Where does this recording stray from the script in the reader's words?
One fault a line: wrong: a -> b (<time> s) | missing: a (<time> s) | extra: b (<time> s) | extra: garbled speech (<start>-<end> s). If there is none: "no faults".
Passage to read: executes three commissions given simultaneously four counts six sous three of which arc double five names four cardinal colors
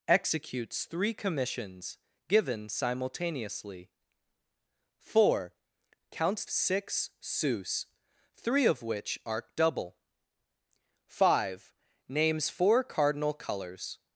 no faults